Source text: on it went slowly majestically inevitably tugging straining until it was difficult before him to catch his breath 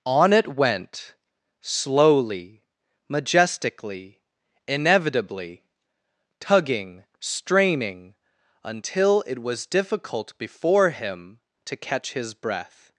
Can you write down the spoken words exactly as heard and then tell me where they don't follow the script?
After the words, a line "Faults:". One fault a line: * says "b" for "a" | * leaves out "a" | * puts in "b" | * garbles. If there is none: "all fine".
on it went slowly majestically inevitably tugging straining until it was difficult before him to catch his breath
Faults:
all fine